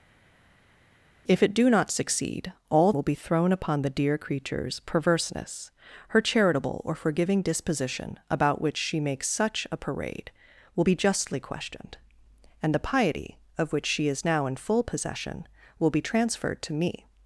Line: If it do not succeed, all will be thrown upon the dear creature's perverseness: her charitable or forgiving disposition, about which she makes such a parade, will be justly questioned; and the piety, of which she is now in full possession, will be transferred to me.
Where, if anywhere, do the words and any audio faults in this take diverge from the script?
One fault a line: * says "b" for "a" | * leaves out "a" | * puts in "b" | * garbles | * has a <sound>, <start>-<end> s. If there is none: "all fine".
all fine